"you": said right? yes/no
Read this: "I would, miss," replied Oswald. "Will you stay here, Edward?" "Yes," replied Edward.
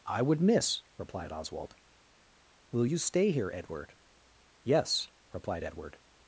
yes